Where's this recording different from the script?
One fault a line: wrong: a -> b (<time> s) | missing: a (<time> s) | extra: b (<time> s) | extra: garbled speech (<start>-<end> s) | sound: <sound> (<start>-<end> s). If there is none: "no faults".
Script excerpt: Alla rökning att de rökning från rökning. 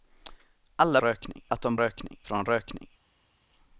no faults